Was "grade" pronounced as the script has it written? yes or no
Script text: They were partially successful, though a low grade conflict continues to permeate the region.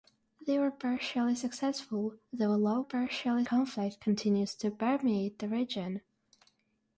no